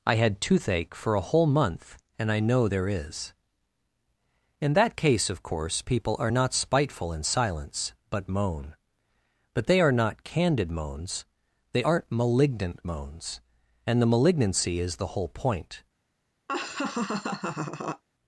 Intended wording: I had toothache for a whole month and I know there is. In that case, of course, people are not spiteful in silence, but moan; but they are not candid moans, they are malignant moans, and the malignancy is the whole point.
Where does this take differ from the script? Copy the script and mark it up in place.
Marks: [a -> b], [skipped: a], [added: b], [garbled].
I had toothache for a whole month and I know there is. In that case, of course, people are not spiteful in silence, but moan; but they are not candid moans, they [are -> aren't] malignant moans, and the malignancy is the whole point.